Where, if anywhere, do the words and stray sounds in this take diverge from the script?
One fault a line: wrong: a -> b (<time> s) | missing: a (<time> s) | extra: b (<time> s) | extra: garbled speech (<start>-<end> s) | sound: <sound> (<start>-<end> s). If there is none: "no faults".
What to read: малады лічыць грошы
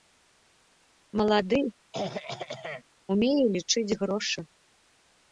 sound: throat clearing (1.9-2.8 s)
extra: умее (3.2 s)